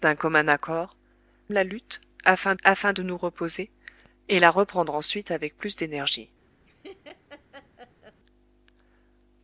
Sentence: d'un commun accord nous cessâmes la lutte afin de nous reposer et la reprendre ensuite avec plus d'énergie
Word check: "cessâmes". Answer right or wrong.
wrong